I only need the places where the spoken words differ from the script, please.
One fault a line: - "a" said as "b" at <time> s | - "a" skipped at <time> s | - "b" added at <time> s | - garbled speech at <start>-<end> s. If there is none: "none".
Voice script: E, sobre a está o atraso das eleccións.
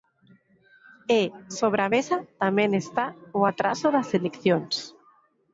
- "mesa tamén" added at 1.9 s